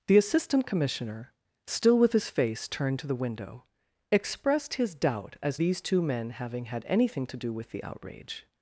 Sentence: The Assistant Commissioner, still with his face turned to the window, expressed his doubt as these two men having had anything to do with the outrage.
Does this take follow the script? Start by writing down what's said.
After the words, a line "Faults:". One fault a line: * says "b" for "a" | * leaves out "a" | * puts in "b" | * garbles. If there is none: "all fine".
The Assistant Commissioner, still with his face turned to the window, expressed his doubt as these two men having had anything to do with the outrage.
Faults:
all fine